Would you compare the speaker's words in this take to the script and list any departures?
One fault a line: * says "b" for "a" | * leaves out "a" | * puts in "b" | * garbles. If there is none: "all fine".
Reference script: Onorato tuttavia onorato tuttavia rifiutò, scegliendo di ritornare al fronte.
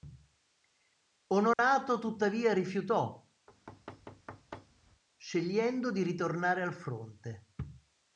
* leaves out "onorato tuttavia"